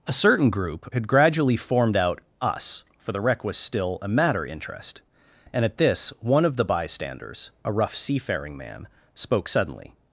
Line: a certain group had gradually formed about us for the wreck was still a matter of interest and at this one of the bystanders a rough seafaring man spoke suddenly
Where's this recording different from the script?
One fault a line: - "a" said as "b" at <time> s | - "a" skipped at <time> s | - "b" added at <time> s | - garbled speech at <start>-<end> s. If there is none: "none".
- "about" said as "out" at 2.0 s
- "of" skipped at 4.4 s